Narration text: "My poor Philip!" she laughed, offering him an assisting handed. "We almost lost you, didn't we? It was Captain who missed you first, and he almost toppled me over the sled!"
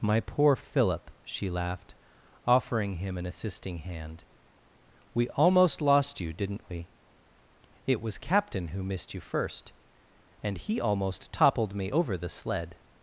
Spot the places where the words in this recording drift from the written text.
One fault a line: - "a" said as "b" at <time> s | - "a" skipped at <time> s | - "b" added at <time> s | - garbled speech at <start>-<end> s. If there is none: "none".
- "handed" said as "hand" at 3.8 s